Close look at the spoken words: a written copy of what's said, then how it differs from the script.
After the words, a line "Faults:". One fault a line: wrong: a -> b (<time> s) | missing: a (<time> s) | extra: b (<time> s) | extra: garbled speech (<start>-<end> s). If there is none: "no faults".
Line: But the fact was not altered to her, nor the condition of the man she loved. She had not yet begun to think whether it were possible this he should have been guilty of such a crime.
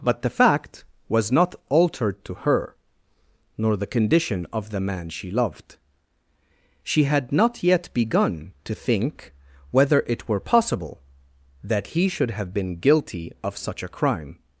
But the fact was not altered to her, nor the condition of the man she loved. She had not yet begun to think whether it were possible that he should have been guilty of such a crime.
Faults:
wrong: this -> that (11.6 s)